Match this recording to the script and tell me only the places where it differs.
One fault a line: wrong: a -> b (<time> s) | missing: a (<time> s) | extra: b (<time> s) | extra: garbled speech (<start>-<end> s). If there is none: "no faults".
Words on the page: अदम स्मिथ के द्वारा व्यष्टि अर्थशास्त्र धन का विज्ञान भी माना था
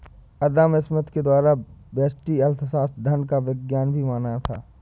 no faults